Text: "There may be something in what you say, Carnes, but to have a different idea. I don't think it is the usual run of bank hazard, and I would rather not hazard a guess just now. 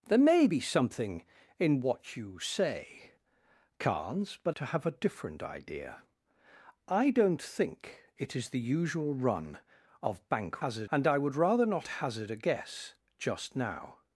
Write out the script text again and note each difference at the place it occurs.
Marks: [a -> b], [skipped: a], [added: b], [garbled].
"There may be something in what you say, Carnes, but to have a different idea. I don't think it is the usual run of bank hazard, and I would rather not hazard a guess just now.